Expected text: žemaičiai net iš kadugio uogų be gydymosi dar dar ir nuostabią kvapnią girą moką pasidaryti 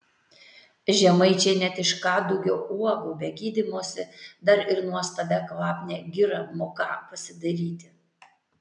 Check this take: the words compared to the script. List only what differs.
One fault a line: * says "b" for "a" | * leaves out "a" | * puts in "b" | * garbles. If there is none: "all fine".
* leaves out "dar"